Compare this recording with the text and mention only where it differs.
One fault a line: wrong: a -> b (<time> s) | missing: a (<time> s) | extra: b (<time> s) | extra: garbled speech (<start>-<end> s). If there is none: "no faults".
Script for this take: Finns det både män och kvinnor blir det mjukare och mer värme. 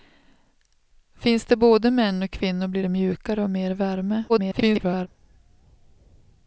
extra: garbled speech (4.3-5.1 s)